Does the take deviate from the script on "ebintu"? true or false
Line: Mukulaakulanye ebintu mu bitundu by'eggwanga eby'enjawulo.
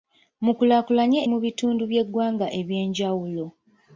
true